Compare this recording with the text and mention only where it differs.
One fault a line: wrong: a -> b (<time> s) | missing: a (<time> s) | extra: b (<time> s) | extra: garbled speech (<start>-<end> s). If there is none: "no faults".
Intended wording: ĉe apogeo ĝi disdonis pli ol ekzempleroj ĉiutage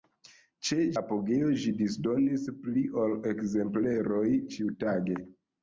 no faults